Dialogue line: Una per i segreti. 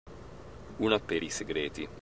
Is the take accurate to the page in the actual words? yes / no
yes